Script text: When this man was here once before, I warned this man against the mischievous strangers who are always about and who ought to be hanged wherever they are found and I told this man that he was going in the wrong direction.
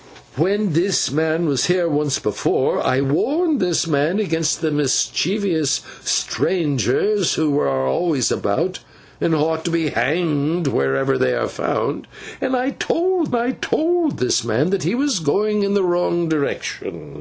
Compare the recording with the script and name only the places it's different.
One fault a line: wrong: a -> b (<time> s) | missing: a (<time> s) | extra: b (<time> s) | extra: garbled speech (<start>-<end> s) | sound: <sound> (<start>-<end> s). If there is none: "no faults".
extra: I told (13.3 s)